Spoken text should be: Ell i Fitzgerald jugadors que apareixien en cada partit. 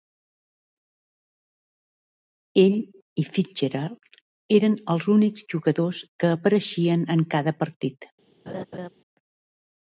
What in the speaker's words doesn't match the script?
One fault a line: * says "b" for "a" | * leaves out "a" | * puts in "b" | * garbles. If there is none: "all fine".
* puts in "eren els únics"